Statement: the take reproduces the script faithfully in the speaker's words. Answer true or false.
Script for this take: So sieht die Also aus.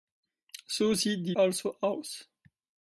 true